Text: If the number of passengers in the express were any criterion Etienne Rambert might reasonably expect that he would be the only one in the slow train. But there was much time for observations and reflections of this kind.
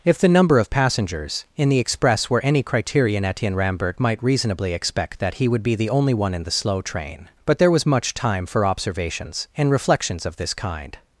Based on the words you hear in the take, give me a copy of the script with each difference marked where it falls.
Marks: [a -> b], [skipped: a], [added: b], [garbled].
If the number of passengers in the express were any criterion Etienne Rambert might reasonably expect that he would be the only one in the slow train. But there was much time for observations and reflections of this kind.